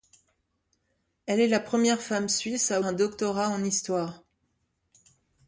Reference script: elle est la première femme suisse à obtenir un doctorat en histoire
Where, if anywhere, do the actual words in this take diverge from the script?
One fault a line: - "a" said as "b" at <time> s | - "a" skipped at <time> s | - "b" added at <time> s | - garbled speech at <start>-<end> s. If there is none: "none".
- "obtenir" skipped at 2.8 s